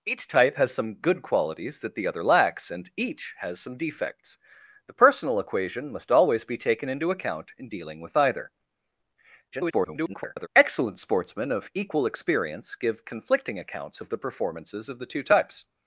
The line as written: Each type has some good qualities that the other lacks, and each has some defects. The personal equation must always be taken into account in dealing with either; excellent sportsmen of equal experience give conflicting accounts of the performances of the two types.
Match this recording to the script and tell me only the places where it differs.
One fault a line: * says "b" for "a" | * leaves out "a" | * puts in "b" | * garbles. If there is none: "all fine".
* garbles